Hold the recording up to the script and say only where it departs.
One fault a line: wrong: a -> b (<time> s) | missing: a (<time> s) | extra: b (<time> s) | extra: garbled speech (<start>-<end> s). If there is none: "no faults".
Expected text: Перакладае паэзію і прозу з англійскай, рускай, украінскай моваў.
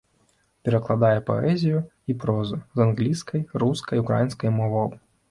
no faults